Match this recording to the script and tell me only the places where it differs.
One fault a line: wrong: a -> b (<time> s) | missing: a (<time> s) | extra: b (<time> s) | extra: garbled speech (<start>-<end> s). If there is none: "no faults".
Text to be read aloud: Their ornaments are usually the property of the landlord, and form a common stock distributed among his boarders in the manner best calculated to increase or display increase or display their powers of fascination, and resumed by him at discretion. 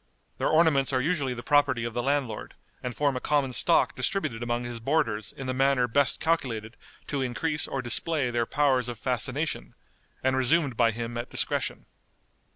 missing: increase or display (8.3 s)